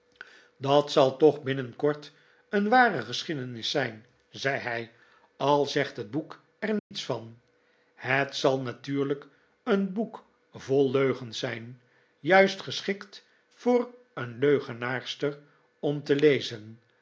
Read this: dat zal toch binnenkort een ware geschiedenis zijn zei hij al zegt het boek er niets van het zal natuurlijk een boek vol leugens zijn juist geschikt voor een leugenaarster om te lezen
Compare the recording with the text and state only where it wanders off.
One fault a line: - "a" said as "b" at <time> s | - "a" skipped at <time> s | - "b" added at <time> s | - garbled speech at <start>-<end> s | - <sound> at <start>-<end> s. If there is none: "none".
- dropout at 6.8-6.9 s